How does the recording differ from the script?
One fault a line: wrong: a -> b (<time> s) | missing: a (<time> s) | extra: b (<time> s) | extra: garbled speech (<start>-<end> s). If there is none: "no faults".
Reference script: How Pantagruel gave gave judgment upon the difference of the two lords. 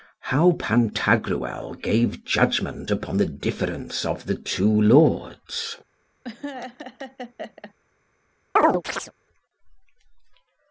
missing: gave (2.2 s)